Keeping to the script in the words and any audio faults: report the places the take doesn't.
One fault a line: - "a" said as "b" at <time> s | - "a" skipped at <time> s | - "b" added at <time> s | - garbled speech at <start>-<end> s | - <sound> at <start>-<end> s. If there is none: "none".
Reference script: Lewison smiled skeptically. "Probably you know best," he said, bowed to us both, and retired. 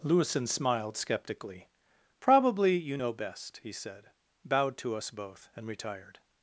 none